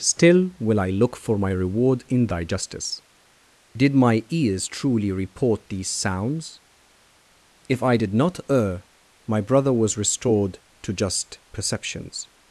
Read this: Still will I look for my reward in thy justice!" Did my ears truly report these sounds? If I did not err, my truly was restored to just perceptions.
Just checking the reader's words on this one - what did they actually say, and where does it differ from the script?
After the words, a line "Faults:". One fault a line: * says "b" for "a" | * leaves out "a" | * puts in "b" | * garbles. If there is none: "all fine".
Still will I look for my reward in thy justice!" Did my ears truly report these sounds? If I did not err, my brother was restored to just perceptions.
Faults:
* says "brother" for "truly"